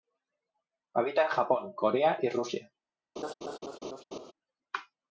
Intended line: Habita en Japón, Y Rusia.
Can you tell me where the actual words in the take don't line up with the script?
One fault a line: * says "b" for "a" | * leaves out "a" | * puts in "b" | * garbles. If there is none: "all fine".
* puts in "Corea"